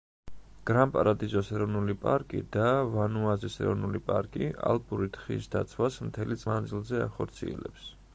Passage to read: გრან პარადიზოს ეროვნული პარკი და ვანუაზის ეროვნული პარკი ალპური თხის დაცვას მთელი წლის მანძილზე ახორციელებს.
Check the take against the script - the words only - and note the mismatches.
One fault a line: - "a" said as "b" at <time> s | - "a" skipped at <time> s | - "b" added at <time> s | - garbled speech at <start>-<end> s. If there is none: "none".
- "წლის" skipped at 6.4 s